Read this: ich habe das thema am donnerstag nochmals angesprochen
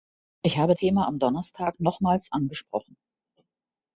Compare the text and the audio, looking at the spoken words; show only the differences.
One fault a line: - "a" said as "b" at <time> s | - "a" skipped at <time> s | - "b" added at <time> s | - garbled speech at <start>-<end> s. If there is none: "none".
- "das" skipped at 0.7 s